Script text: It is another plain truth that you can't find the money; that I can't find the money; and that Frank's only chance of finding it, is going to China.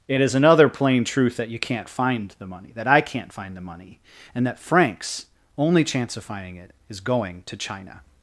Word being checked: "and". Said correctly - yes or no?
yes